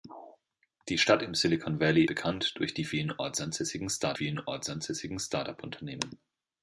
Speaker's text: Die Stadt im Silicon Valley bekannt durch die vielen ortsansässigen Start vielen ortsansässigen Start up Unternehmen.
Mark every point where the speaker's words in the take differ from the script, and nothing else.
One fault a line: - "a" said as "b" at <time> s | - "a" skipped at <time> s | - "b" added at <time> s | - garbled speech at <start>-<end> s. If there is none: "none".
none